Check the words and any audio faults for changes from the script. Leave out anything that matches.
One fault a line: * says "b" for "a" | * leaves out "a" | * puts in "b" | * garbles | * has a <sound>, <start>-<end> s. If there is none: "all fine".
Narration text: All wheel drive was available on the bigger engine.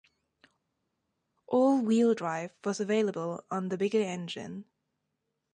all fine